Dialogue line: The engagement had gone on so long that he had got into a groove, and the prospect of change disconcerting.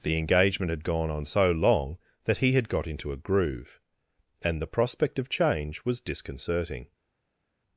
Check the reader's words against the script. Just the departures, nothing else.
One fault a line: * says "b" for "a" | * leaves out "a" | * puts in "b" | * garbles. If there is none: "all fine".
* puts in "was"